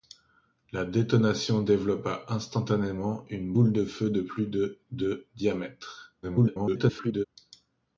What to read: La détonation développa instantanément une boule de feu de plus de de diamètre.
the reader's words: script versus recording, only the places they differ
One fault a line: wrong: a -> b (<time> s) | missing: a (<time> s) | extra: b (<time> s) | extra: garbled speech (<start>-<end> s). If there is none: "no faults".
extra: garbled speech (6.2-7.2 s)